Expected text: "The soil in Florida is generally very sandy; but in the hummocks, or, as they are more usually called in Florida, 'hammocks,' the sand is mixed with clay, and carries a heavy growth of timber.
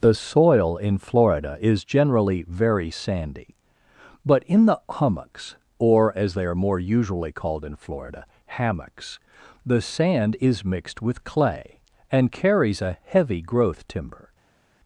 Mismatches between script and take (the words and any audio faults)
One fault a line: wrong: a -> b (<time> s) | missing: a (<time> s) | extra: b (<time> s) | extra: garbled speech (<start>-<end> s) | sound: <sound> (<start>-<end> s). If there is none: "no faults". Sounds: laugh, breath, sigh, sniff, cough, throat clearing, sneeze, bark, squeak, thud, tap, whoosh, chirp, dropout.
missing: of (13.9 s)